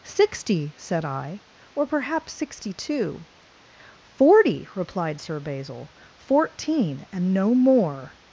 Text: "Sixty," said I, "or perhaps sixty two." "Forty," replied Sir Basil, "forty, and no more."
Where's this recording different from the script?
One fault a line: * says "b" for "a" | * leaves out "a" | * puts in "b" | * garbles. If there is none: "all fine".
* says "fourteen" for "forty"